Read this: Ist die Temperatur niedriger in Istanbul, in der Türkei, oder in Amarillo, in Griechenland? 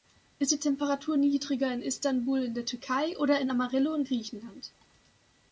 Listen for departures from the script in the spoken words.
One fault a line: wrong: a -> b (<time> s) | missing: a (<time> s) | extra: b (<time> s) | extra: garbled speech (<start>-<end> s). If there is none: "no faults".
no faults